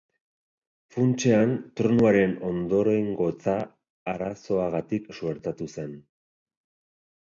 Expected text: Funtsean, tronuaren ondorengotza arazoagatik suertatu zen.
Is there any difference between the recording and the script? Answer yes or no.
no